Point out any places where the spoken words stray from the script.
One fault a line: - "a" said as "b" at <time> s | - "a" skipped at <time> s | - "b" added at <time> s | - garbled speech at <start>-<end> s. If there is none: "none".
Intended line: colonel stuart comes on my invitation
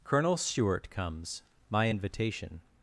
- "on" skipped at 1.4 s